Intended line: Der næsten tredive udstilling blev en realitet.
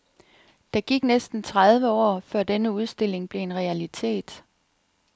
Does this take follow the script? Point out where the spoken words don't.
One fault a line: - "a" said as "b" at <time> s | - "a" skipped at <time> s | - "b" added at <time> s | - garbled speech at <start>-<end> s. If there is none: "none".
- "gik" added at 0.8 s
- "år før denne" added at 1.9 s